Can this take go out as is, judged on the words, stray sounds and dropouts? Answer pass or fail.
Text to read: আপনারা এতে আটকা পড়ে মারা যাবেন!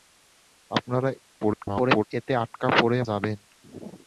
fail